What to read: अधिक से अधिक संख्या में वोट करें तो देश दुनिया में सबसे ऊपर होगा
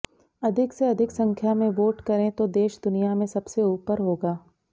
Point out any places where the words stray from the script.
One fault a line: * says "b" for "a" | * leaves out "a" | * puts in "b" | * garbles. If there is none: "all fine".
all fine